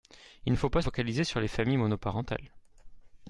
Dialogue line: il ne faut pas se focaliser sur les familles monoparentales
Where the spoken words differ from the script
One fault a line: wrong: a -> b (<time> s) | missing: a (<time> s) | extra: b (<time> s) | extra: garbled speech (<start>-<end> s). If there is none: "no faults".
missing: se (0.8 s)